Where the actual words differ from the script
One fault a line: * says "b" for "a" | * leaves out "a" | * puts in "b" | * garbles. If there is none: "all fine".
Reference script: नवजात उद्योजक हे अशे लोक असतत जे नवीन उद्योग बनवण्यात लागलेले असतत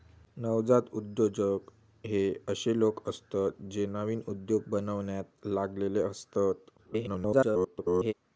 * garbles